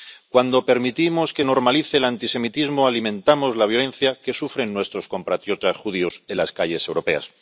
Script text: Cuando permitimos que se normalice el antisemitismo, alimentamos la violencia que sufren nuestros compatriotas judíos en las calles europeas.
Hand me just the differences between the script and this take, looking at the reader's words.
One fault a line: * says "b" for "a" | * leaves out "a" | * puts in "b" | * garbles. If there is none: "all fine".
* leaves out "se"